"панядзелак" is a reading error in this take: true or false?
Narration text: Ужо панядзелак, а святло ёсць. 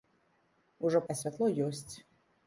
true